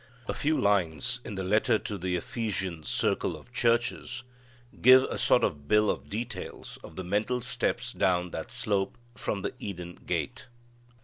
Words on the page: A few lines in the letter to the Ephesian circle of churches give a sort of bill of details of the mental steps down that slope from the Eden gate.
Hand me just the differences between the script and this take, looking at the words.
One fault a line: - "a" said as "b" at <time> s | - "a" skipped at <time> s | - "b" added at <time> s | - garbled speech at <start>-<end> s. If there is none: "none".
none